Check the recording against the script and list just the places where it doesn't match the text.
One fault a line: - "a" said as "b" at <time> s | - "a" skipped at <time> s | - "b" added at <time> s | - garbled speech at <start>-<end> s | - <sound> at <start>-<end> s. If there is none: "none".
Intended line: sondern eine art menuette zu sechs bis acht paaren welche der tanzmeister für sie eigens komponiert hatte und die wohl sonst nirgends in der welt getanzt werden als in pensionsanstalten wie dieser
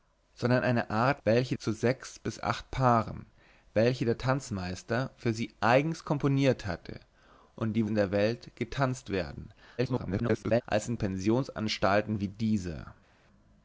- "menuette" said as "welche" at 1.2 s
- "wohl sonst nirgends" skipped at 7.9 s
- garbled speech at 9.8-10.6 s